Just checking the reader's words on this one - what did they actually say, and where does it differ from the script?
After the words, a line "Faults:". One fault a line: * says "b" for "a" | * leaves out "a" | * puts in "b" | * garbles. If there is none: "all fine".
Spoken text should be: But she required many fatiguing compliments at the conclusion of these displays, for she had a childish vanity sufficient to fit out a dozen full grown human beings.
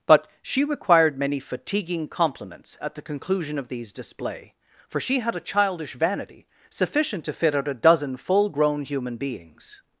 But she required many fatiguing compliments at the conclusion of these display, for she had a childish vanity sufficient to fit out a dozen full grown human beings.
Faults:
* says "display" for "displays"